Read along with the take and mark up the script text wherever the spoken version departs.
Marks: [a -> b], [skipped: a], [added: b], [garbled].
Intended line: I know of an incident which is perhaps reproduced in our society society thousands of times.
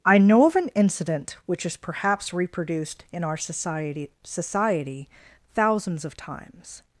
I know of an incident which is perhaps reproduced in our society society thousands of times.